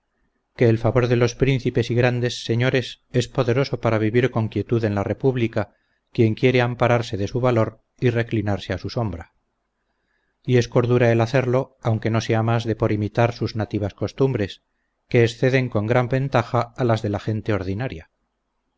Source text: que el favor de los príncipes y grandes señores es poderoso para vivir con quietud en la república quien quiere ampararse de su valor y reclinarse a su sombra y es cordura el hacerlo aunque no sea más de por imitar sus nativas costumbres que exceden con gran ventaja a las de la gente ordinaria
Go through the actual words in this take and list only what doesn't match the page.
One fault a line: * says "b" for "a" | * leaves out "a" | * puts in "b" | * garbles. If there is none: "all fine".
all fine